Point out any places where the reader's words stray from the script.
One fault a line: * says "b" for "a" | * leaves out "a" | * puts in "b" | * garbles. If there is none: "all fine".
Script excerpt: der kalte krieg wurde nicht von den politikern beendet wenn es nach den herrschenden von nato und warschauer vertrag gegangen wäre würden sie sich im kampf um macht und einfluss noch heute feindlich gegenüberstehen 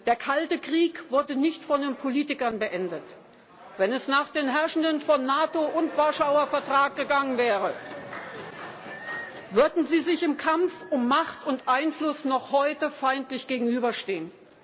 all fine